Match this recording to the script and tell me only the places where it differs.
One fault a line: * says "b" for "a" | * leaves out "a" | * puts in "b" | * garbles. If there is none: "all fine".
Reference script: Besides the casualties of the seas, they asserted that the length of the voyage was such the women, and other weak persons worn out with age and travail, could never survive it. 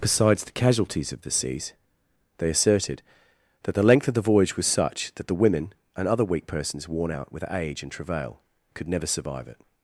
* puts in "that"